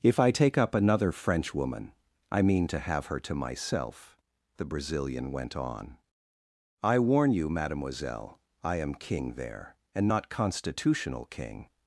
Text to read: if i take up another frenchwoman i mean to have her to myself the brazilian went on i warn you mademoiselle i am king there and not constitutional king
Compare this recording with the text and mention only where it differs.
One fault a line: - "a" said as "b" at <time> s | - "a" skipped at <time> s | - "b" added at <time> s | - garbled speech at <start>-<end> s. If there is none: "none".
none